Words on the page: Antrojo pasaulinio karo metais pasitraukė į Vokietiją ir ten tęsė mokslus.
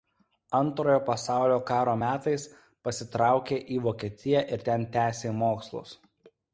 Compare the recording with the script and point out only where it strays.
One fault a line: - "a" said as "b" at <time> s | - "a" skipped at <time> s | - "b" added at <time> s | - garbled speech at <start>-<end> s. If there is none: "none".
none